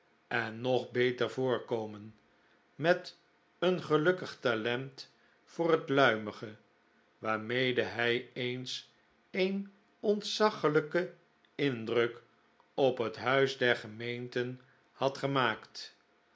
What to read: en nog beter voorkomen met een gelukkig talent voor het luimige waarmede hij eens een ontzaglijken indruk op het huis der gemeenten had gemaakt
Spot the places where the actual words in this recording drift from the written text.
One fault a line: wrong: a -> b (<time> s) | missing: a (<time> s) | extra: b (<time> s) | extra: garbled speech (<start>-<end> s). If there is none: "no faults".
no faults